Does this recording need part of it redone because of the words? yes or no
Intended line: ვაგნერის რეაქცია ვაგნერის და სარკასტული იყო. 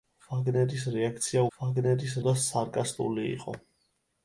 no